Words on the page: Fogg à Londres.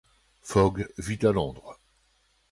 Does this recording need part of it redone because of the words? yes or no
yes